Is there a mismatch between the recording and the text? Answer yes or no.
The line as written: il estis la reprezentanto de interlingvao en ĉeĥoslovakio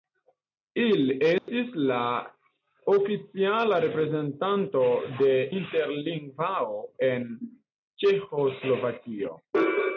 yes